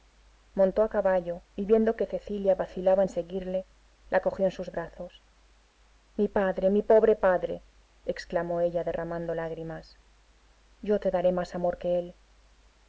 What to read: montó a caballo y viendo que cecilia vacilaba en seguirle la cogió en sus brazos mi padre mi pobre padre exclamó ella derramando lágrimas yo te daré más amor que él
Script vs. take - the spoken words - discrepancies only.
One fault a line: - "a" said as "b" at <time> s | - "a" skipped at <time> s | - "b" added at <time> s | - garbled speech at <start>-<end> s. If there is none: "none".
none